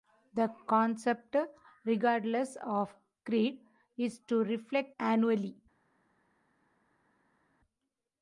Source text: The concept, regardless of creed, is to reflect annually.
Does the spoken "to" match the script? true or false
true